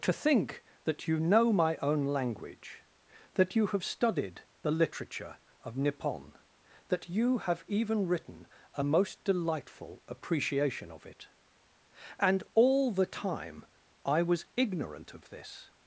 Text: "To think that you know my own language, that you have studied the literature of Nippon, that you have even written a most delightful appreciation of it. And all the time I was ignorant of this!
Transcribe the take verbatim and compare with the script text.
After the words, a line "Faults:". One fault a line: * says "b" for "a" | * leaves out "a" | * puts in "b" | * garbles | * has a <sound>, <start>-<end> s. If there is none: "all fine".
"To think that you know my own language, that you have studied the literature of Nippon, that you have even written a most delightful appreciation of it. And all the time I was ignorant of this!
Faults:
all fine